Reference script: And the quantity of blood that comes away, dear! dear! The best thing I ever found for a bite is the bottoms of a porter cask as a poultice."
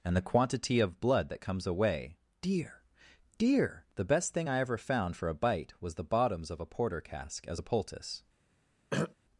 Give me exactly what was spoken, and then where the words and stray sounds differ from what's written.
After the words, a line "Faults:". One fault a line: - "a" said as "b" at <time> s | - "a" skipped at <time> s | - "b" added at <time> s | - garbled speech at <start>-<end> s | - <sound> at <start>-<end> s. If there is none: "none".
And the quantity of blood that comes away, dear! dear! The best thing I ever found for a bite was the bottoms of a porter cask as a poultice."
Faults:
- "is" said as "was" at 5.8 s
- throat clearing at 8.9-9.1 s